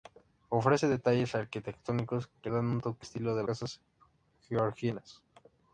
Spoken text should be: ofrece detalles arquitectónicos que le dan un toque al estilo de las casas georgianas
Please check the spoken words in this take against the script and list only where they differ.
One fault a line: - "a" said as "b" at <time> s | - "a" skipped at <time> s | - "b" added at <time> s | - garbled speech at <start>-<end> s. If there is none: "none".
- "le" skipped at 2.5 s
- "al" skipped at 3.1 s
- "las" skipped at 3.4 s